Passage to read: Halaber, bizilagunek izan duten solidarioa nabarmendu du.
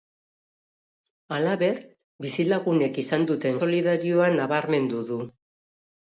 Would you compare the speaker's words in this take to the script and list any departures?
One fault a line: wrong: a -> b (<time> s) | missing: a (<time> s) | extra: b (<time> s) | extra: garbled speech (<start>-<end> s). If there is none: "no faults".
no faults